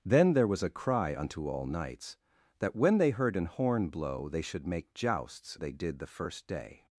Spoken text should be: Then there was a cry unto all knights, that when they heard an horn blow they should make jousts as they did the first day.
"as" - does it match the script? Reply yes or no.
no